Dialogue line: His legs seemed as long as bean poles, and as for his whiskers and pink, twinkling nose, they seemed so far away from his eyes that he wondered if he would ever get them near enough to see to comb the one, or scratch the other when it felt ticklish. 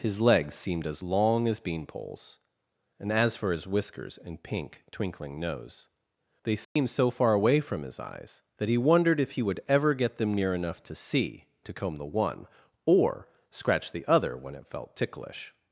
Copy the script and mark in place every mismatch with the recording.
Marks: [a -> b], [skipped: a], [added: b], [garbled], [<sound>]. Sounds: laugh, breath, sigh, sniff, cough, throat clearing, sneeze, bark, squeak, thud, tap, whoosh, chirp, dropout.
His legs seemed as long as bean poles, and as for his whiskers and pink, twinkling nose, they seemed [dropout] so far away from his eyes that he wondered if he would ever get them near enough to see to comb the one, or scratch the other when it felt ticklish.